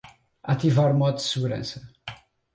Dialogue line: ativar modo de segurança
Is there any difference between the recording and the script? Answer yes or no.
no